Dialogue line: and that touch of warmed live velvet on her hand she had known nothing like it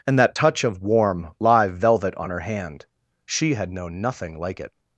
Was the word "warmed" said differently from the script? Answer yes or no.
yes